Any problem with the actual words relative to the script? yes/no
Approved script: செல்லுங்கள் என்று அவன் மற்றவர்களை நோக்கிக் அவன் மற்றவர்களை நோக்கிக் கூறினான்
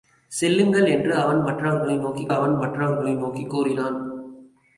no